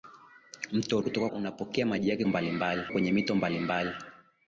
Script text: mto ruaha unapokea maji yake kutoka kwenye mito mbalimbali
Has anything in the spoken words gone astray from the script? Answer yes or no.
yes